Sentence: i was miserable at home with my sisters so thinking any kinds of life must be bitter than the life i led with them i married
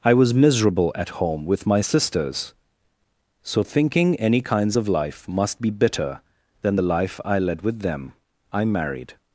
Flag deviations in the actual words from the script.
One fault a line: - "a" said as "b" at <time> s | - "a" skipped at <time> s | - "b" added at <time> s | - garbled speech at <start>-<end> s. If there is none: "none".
none